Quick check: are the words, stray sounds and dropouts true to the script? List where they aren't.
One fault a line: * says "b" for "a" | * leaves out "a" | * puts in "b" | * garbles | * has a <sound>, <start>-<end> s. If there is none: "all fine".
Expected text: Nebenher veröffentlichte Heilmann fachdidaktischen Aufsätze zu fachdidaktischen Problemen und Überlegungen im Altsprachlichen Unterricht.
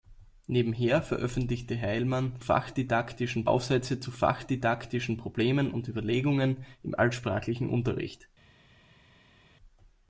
all fine